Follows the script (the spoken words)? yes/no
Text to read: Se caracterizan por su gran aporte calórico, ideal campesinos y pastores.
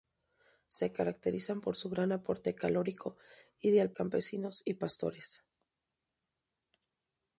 yes